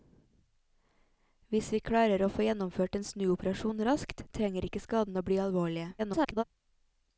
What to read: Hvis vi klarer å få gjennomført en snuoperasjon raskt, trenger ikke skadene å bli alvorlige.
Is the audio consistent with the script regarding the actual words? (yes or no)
no